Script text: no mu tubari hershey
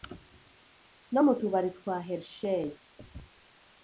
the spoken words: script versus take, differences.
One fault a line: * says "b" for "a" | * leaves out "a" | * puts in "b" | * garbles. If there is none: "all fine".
* puts in "twa"